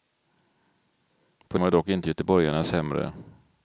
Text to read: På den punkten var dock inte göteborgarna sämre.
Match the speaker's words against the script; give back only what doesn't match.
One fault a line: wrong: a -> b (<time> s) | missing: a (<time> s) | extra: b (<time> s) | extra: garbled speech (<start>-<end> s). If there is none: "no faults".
missing: den punkten (1.6 s)